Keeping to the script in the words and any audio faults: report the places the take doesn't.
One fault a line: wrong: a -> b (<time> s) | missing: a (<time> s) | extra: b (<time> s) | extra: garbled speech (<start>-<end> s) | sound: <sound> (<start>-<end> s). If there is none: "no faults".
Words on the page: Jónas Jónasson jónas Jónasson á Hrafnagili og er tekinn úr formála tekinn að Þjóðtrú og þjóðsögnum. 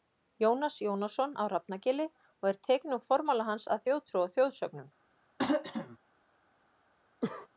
missing: jónas Jónasson (1.4 s)
wrong: tekinn -> hans (3.5 s)
sound: throat clearing (5.4-6.0 s)
sound: cough (7.2-7.5 s)